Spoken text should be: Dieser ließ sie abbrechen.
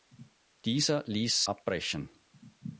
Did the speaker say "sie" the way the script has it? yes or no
no